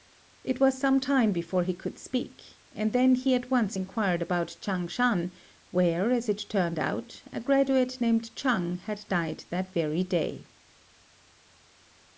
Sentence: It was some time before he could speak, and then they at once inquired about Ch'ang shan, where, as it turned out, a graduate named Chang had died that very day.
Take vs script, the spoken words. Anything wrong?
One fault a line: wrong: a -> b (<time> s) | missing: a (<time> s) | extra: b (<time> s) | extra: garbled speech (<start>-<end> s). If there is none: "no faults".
wrong: they -> he (3.2 s)